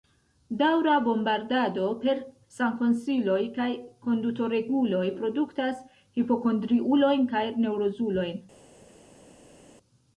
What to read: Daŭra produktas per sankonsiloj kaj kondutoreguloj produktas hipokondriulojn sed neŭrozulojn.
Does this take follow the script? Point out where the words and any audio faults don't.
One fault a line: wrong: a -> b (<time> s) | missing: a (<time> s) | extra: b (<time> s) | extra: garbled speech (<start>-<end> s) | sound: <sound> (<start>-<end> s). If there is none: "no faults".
wrong: produktas -> bombardado (1.1 s)
wrong: sed -> kaj (7.3 s)